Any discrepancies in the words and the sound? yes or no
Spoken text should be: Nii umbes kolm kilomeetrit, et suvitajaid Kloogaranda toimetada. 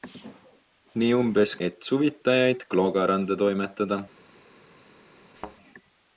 yes